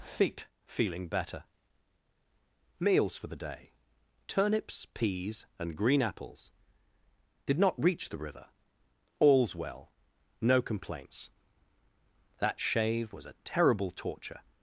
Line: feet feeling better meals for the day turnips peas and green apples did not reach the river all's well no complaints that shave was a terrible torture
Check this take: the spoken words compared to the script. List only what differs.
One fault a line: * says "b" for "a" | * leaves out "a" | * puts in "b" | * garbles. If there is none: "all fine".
all fine